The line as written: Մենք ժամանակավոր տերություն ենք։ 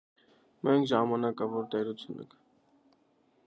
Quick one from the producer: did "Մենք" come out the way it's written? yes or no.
yes